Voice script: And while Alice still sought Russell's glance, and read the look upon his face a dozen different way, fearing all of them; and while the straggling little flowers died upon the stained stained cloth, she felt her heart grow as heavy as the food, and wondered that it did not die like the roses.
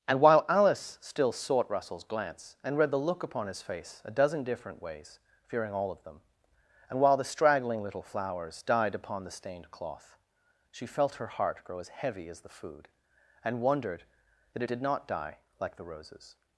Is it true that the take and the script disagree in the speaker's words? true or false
true